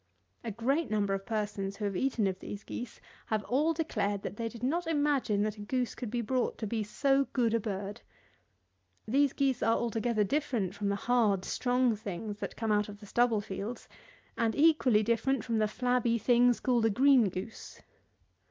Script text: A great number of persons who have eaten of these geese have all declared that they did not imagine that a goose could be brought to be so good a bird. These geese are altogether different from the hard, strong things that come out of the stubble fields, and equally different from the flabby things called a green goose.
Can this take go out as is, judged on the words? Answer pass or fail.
pass